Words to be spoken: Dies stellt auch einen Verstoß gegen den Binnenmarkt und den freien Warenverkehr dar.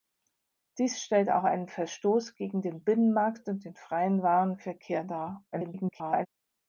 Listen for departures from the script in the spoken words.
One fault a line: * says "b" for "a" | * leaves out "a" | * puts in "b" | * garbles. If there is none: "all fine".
* garbles